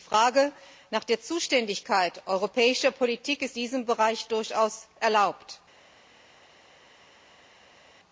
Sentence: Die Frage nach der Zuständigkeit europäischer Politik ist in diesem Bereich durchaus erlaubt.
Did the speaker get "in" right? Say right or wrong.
wrong